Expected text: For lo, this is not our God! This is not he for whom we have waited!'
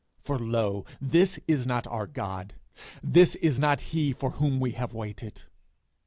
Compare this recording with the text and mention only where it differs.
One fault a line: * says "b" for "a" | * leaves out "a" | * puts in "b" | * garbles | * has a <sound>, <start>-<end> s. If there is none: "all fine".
all fine